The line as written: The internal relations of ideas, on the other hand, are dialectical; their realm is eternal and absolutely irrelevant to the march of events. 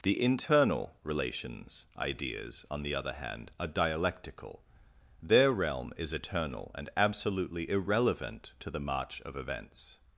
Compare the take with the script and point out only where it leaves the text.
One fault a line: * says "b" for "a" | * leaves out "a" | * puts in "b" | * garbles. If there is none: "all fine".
* leaves out "of"